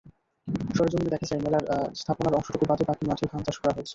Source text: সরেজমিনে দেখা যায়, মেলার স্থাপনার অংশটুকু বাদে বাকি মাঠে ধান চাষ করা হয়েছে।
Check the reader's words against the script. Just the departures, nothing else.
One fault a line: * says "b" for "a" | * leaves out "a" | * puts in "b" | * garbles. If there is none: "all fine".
all fine